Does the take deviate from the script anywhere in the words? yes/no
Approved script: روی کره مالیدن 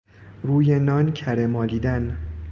yes